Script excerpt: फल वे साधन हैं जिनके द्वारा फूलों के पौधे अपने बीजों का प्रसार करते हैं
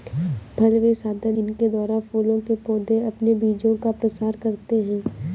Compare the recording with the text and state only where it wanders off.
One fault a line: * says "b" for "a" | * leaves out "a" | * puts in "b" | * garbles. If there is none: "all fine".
* leaves out "हैं"